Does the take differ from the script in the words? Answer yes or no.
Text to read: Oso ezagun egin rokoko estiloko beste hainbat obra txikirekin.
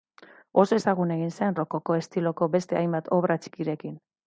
yes